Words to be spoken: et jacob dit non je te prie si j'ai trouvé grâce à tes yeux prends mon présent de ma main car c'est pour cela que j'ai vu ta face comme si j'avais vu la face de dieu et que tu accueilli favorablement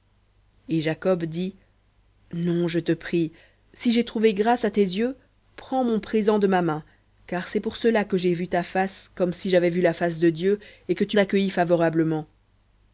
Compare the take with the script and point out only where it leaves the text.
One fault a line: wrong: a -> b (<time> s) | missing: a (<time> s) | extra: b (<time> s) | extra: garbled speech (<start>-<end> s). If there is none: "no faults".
no faults